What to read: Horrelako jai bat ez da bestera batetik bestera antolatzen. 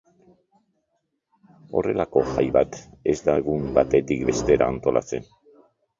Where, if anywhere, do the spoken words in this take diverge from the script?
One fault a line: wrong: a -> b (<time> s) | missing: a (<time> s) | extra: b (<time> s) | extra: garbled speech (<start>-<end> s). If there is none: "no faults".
wrong: bestera -> egun (3.4 s)